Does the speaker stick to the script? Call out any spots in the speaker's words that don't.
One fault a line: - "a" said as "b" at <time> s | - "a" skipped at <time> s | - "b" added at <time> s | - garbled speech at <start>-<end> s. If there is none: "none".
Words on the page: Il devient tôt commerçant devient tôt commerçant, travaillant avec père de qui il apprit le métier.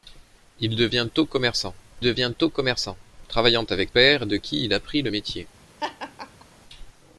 none